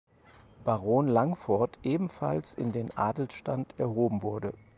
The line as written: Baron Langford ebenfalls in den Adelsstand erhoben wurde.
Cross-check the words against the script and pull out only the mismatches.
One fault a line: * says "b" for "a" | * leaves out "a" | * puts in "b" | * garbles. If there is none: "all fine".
all fine